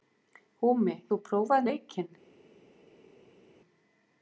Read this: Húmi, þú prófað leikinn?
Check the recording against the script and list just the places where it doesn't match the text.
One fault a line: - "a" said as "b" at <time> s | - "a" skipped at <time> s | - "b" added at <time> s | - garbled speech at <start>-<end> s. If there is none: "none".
none